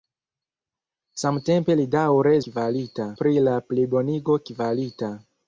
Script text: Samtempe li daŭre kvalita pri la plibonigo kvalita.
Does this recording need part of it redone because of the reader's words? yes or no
no